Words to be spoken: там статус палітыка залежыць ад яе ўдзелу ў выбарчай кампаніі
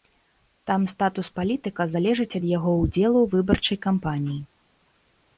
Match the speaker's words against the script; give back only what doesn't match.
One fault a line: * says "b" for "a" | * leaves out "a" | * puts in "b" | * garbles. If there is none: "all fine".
* says "яго" for "яе"